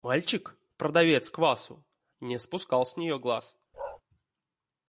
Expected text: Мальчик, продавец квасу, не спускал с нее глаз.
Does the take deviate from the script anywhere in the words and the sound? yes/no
yes